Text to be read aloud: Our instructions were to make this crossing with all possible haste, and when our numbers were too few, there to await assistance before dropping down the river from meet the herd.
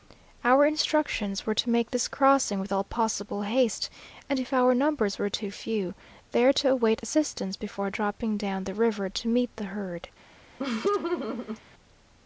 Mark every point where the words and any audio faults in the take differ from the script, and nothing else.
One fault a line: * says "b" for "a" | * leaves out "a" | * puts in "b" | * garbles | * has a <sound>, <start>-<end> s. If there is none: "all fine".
* says "if" for "when"
* says "to" for "from"
* has a laugh, 10.6-11.6 s